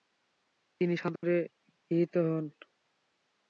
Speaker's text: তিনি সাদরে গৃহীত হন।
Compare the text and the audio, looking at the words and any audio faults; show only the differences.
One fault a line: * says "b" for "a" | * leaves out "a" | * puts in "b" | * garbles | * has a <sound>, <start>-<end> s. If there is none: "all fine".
* has a dropout, 1.2-1.2 s